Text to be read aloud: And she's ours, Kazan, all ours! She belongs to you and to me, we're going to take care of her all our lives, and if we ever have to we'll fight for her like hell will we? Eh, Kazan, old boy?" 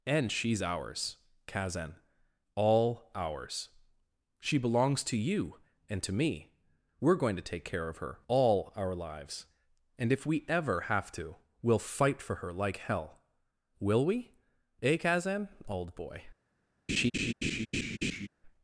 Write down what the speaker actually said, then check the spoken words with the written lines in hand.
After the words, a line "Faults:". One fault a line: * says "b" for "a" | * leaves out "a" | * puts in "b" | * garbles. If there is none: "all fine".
And she's ours, Kazan, all ours! She belongs to you and to me, we're going to take care of her all our lives, and if we ever have to we'll fight for her like hell will we? Eh, Kazan, old boy?"
Faults:
all fine